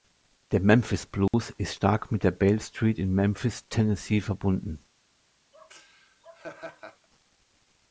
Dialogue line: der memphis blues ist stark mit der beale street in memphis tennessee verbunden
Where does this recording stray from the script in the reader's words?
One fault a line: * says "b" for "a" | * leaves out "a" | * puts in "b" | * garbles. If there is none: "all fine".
all fine